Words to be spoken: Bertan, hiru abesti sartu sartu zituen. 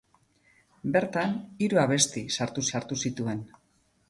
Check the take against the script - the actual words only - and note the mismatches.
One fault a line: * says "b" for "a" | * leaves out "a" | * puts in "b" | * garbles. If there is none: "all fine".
all fine